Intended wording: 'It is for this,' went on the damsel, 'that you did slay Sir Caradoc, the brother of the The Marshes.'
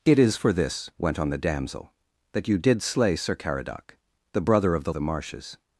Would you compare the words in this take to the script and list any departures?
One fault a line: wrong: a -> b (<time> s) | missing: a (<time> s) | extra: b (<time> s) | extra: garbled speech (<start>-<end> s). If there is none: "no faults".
no faults